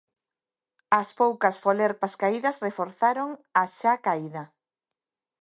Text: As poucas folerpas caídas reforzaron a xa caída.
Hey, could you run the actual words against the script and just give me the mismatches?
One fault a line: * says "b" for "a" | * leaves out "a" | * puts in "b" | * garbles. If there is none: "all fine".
all fine